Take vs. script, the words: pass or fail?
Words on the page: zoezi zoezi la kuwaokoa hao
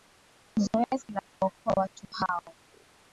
fail